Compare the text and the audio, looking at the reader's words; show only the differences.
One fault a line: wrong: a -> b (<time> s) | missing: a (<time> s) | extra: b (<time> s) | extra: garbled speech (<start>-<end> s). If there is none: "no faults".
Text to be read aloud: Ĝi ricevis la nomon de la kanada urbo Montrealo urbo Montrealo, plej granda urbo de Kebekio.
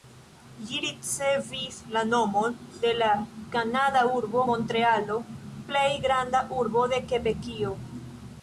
missing: urbo Montrealo (5.2 s)